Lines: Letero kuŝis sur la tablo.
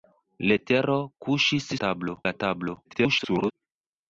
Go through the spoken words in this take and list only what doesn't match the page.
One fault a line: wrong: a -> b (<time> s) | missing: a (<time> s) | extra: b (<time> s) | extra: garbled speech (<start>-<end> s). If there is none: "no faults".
wrong: sur -> tablo (1.9 s)
extra: garbled speech (2.8-3.5 s)